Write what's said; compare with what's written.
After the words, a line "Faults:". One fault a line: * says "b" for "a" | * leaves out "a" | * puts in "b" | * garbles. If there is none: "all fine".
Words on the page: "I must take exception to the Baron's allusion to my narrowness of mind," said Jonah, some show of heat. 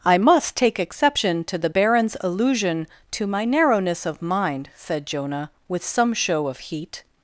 "I must take exception to the Baron's allusion to my narrowness of mind," said Jonah, with some show of heat.
Faults:
* puts in "with"